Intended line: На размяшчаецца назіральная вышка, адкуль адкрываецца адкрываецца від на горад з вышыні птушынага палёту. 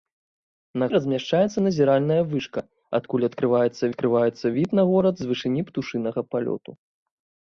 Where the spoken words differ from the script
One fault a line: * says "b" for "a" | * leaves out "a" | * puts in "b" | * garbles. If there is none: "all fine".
all fine